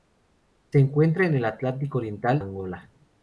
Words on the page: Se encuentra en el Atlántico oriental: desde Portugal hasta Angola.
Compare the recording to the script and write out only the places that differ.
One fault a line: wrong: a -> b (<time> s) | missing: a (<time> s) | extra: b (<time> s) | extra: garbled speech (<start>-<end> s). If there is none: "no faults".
missing: desde Portugal hasta (2.4 s)